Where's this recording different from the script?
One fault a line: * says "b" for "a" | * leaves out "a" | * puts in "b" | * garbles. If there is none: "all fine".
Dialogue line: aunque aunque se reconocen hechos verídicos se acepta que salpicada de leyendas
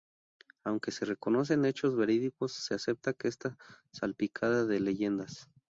* leaves out "aunque"
* puts in "está"